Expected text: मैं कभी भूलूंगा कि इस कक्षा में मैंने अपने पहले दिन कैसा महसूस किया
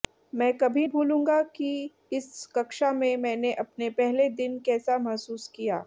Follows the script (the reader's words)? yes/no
yes